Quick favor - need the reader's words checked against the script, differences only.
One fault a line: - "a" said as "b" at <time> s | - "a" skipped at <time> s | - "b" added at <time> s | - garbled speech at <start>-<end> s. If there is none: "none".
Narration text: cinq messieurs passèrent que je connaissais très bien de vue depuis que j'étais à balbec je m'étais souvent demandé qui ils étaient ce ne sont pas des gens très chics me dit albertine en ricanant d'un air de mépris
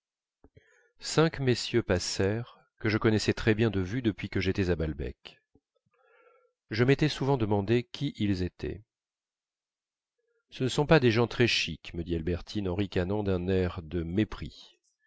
none